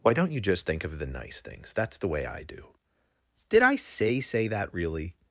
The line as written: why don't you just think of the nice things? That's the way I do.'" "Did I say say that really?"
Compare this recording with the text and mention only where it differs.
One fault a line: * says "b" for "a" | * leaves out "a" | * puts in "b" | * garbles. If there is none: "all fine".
all fine